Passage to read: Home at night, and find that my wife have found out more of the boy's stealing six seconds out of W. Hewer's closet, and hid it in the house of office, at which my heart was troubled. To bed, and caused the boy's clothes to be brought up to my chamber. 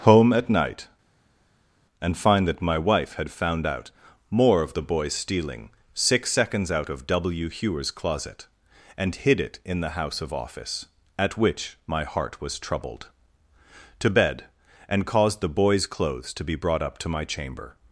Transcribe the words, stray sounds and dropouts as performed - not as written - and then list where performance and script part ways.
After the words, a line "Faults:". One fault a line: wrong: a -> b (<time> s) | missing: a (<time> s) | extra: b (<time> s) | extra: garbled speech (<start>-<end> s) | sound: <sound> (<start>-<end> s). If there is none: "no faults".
Home at night, and find that my wife had found out more of the boy's stealing six seconds out of W. Hewer's closet, and hid it in the house of office, at which my heart was troubled. To bed, and caused the boy's clothes to be brought up to my chamber.
Faults:
wrong: have -> had (3.2 s)